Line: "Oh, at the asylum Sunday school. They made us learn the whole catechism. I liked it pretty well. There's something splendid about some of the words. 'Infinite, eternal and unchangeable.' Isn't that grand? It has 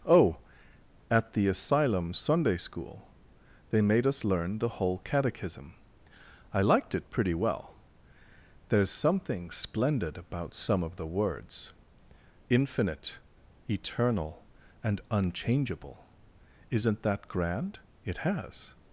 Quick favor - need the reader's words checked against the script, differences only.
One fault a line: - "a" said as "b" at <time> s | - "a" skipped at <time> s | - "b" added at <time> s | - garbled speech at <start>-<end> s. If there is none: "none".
none